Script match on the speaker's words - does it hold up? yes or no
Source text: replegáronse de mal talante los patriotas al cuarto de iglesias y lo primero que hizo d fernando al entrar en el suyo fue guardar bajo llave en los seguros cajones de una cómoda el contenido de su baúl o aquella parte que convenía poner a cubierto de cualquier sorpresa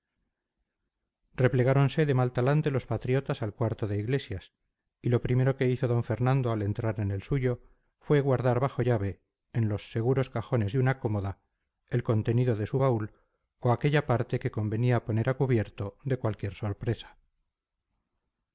yes